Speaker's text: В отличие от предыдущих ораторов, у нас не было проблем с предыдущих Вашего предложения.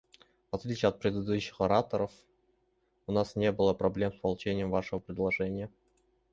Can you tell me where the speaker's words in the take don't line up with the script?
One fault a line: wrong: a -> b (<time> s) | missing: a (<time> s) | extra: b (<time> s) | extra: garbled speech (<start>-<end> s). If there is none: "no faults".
wrong: предыдущих -> получением (4.2 s)